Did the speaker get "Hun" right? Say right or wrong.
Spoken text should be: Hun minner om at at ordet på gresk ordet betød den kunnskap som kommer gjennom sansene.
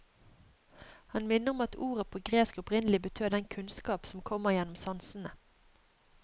wrong